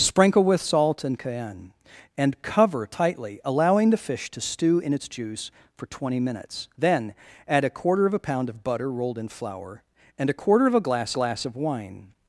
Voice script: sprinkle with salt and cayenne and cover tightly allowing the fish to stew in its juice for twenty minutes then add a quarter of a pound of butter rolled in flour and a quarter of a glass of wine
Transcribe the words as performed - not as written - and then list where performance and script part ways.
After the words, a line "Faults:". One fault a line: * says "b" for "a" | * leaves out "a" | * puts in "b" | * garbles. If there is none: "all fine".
sprinkle with salt and cayenne and cover tightly allowing the fish to stew in its juice for twenty minutes then add a quarter of a pound of butter rolled in flour and a quarter of a glass glass of wine
Faults:
* puts in "glass"